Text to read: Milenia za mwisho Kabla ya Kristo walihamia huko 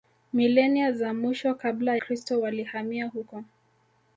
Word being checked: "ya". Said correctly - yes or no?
no